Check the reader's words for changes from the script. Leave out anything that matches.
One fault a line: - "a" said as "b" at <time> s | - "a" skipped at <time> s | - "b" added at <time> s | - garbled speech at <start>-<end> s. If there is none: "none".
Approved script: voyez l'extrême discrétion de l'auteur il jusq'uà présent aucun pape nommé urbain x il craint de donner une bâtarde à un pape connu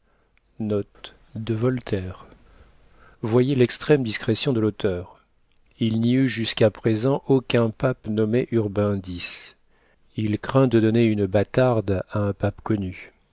- "n'y eut" added at 6.0 s